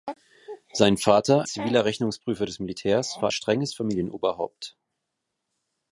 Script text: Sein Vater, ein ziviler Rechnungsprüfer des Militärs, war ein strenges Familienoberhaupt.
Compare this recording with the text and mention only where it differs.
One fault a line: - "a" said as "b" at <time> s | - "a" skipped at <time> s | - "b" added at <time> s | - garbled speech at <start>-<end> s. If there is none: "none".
- "ein" skipped at 1.4 s
- "ein" skipped at 3.3 s